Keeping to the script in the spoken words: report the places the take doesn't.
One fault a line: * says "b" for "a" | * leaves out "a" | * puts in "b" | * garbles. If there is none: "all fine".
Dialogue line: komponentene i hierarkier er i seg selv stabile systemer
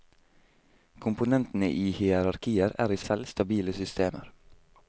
* leaves out "seg"